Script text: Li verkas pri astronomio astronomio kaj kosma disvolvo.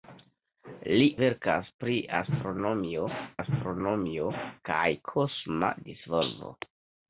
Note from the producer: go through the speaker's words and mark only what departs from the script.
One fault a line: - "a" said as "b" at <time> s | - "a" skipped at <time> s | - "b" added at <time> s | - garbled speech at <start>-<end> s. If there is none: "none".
none